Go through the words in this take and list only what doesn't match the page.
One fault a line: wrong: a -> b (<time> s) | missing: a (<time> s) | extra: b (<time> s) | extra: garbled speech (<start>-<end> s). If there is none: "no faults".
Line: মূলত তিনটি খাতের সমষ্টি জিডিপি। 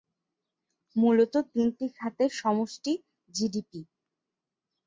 no faults